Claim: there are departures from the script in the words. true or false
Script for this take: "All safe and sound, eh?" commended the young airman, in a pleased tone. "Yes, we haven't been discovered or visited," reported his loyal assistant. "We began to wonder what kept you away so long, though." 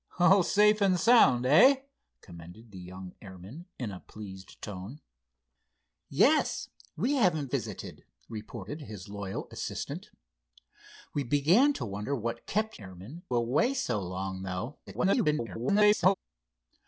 true